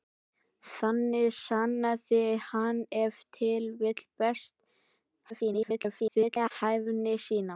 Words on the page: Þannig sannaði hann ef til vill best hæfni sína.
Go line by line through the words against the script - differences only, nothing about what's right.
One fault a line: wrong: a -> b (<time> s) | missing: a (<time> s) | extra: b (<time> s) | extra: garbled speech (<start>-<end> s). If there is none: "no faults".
extra: garbled speech (5.3-6.5 s)